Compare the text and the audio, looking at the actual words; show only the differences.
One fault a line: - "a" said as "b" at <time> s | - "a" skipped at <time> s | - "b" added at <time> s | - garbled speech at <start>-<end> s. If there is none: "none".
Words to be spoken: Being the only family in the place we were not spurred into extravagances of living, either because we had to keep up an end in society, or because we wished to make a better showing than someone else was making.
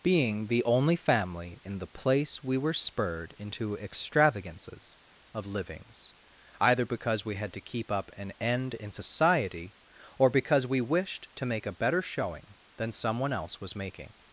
- "not" skipped at 2.7 s
- "living" said as "livings" at 5.5 s